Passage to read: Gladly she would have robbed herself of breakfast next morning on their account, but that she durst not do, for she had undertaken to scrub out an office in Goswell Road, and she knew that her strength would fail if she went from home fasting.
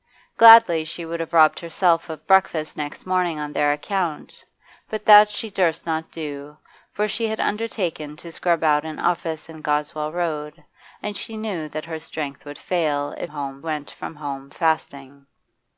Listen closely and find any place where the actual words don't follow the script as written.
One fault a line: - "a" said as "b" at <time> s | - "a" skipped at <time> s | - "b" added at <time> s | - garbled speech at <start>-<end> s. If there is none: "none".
- "she" said as "home" at 13.3 s